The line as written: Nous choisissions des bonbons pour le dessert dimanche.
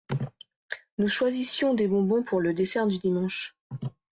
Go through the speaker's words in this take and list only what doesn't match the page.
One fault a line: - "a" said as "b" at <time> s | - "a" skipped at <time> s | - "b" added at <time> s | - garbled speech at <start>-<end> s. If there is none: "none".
- "du" added at 2.9 s